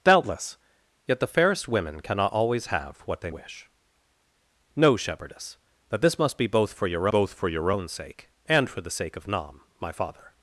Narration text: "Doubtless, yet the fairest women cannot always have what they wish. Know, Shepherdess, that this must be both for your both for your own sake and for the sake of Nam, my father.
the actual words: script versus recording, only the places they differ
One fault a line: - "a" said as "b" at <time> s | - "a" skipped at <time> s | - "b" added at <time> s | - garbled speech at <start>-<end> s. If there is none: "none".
none